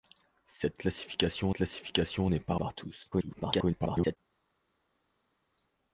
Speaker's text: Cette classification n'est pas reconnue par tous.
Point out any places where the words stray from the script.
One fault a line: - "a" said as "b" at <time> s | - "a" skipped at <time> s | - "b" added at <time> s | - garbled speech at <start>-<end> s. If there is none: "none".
- "classification" added at 1.5 s
- "reconnue" skipped at 2.6 s
- garbled speech at 3.1-4.2 s